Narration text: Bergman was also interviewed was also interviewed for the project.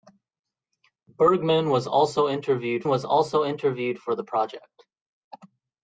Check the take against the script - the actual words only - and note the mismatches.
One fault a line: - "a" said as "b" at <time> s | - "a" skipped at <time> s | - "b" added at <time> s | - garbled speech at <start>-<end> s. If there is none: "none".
none